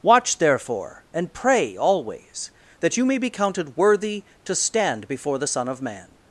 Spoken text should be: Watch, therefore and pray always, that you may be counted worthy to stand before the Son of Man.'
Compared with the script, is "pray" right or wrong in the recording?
right